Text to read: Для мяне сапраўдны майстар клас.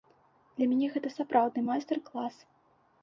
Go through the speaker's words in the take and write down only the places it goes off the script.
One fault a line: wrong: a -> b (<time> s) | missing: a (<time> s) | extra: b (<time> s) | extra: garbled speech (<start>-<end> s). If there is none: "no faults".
extra: гэта (0.9 s)